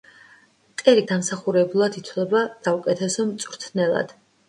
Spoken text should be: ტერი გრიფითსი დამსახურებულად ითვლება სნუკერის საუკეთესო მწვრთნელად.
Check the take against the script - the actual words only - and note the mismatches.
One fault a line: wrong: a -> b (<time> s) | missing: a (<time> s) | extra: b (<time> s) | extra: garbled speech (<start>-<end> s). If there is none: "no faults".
missing: გრიფითსი (1.0 s)
missing: სნუკერის (2.4 s)